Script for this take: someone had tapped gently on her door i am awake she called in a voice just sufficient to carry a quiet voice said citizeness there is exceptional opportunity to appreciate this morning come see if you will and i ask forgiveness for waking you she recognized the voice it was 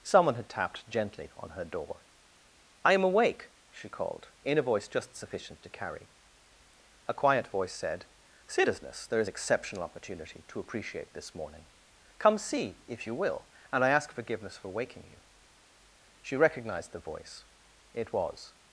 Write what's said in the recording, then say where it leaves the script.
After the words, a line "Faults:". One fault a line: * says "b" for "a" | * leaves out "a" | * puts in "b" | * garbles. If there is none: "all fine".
someone had tapped gently on her door i am awake she called in a voice just sufficient to carry a quiet voice said citizeness there is exceptional opportunity to appreciate this morning come see if you will and i ask forgiveness for waking you she recognized the voice it was
Faults:
all fine